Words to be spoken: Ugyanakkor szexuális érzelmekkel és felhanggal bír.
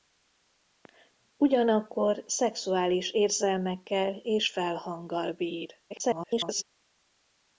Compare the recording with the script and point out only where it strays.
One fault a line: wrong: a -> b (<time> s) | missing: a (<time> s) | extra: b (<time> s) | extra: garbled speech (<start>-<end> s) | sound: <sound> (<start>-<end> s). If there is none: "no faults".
extra: garbled speech (5.9-6.6 s)